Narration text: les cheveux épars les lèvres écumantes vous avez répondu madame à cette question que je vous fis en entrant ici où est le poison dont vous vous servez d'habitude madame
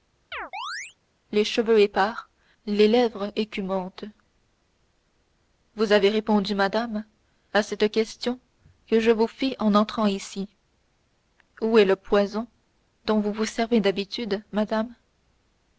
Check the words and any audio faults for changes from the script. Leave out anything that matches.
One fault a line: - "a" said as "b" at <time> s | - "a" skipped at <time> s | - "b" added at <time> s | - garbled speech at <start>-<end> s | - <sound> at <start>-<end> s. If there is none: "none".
- chirp at 0.3-1.0 s